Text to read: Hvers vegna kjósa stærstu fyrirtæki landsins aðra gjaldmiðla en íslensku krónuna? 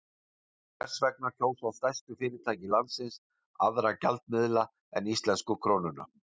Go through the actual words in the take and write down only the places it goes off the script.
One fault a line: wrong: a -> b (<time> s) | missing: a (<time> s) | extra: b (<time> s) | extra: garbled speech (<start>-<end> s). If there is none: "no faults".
no faults